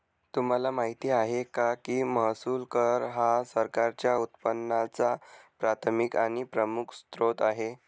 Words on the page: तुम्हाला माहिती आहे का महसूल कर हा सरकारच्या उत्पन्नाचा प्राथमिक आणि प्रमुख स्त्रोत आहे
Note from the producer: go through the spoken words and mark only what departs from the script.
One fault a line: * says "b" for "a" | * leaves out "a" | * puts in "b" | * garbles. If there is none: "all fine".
* puts in "की"